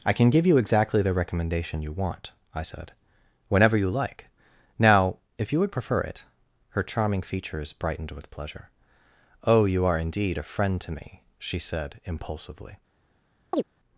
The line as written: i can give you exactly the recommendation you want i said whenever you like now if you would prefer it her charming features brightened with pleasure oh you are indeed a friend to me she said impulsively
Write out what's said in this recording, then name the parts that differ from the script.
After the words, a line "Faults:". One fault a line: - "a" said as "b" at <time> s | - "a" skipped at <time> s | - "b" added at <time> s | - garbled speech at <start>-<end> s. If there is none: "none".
i can give you exactly the recommendation you want i said whenever you like now if you would prefer it her charming features brightened with pleasure oh you are indeed a friend to me she said impulsively
Faults:
none